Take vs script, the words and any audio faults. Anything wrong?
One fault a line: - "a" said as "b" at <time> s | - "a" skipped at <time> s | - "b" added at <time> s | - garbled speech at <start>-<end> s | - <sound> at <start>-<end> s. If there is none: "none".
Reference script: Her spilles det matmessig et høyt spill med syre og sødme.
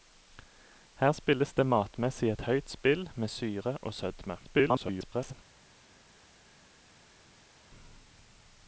- garbled speech at 4.4-5.3 s